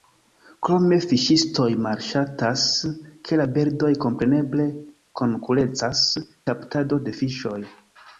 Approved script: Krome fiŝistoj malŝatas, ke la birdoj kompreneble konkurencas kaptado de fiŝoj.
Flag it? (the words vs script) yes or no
no